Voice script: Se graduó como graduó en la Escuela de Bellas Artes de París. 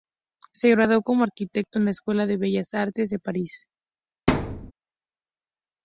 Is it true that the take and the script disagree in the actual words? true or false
true